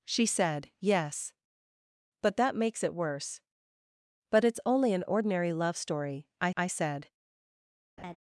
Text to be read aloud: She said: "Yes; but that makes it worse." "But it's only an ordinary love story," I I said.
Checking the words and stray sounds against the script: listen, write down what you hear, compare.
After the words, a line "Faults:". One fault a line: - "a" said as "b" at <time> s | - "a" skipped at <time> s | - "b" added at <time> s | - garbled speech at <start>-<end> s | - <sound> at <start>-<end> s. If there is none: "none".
She said: "Yes; but that makes it worse." "But it's only an ordinary love story," I I said.
Faults:
- laugh at 8.0-8.2 s